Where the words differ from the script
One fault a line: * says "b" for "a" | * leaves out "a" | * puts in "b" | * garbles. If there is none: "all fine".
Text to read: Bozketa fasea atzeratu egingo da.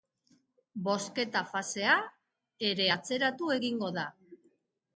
* puts in "ere"